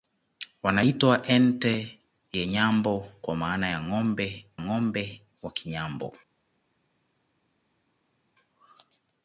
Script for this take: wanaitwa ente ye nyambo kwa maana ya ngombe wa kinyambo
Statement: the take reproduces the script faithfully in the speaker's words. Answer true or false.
false